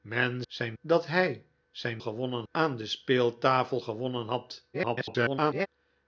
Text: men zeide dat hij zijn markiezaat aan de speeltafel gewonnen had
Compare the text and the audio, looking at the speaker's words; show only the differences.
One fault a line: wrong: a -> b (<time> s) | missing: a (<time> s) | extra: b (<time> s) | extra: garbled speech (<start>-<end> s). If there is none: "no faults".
wrong: zeide -> zijn (0.4 s)
wrong: markiezaat -> gewonnen (2.0 s)
extra: garbled speech (4.7-5.7 s)